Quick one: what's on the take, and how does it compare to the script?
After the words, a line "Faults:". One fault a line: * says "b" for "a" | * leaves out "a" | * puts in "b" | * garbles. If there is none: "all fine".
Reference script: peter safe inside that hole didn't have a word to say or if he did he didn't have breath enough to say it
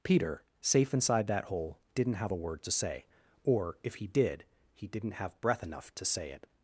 peter safe inside that hole didn't have a word to say or if he did he didn't have breath enough to say it
Faults:
all fine